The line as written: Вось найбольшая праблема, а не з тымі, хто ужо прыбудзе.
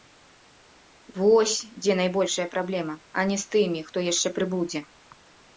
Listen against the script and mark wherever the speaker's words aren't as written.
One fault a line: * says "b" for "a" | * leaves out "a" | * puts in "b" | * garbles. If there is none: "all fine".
* puts in "дзе"
* says "яшчэ" for "ужо"